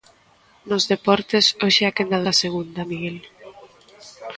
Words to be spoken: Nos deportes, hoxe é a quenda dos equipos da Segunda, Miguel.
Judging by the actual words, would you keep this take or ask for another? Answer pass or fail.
fail